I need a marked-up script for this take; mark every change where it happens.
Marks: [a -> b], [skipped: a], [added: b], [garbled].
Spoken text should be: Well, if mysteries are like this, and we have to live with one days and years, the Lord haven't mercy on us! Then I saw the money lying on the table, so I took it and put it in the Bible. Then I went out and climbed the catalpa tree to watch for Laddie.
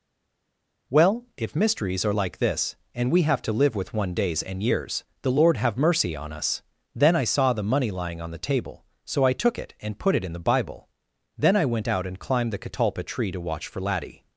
Well, if mysteries are like this, and we have to live with one days and years, the Lord [haven't -> have] mercy on us! Then I saw the money lying on the table, so I took it and put it in the Bible. Then I went out and climbed the catalpa tree to watch for Laddie.